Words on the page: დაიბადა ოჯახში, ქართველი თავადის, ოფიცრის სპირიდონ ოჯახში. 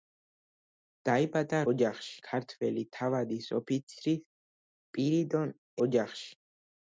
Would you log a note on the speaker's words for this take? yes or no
no